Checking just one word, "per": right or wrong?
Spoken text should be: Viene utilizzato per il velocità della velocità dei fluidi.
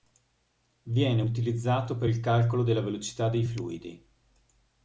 right